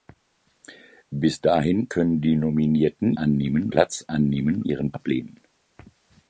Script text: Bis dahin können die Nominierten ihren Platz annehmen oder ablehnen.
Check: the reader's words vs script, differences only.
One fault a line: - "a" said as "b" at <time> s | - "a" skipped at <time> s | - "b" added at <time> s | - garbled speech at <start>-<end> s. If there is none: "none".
- "ihren" said as "annehmen" at 3.1 s
- "oder" said as "ihren" at 4.6 s